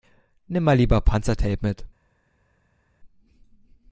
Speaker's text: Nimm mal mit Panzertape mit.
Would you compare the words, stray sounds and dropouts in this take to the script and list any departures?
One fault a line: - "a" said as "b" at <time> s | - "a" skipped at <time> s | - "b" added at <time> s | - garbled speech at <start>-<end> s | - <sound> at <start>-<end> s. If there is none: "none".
- "mit" said as "lieber" at 0.8 s